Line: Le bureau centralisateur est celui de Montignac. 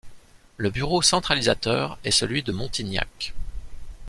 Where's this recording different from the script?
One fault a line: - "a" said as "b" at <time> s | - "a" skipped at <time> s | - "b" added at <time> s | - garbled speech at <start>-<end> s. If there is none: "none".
none